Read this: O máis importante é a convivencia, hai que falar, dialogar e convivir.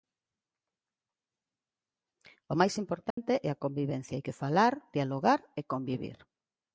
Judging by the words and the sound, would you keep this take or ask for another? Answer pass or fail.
fail